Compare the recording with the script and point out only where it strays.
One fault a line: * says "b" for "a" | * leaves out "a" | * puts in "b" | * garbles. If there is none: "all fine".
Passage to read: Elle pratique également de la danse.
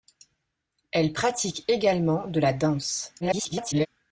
* garbles